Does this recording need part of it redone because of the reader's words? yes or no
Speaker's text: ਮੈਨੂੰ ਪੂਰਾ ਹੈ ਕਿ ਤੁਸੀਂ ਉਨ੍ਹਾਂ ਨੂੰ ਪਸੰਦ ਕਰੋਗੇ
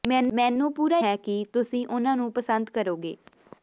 no